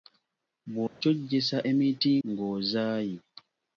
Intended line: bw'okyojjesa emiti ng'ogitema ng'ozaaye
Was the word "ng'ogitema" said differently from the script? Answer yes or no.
yes